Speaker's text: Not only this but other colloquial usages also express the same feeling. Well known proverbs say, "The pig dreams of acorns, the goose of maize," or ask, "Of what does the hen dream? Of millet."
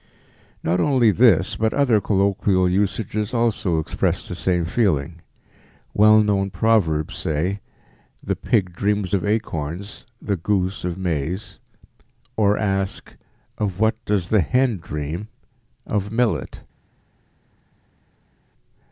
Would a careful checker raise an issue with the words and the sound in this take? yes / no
no